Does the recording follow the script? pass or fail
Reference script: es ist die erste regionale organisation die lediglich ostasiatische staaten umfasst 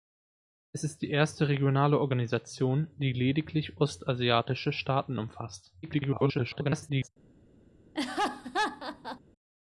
fail